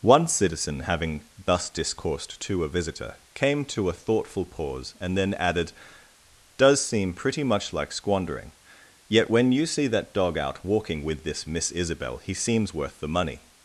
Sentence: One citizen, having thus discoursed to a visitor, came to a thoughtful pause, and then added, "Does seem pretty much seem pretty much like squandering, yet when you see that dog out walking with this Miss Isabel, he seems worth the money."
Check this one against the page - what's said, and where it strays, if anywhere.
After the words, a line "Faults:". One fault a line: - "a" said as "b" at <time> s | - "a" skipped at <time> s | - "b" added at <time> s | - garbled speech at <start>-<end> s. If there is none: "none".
One citizen, having thus discoursed to a visitor, came to a thoughtful pause, and then added, "Does seem pretty much like squandering, yet when you see that dog out walking with this Miss Isabel, he seems worth the money."
Faults:
- "seem pretty much" skipped at 7.7 s